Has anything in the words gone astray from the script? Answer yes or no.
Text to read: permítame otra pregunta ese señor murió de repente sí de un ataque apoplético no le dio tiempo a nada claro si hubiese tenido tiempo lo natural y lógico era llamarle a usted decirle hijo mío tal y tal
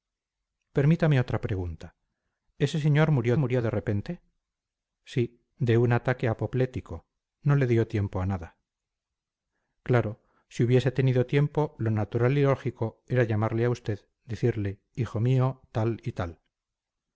yes